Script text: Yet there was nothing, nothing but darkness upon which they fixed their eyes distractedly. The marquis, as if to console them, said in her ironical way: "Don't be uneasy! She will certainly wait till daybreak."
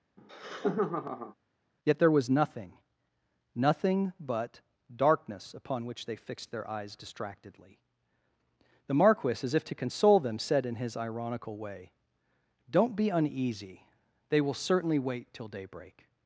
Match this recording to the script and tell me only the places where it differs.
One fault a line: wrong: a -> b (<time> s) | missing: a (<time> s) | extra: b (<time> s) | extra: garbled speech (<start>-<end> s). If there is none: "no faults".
wrong: her -> his (10.8 s)
wrong: She -> They (14.3 s)